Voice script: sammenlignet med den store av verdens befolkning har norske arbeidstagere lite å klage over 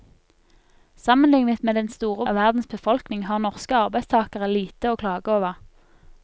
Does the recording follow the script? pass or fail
pass